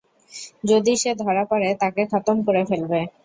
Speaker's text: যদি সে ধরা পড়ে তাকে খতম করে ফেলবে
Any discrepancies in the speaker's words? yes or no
no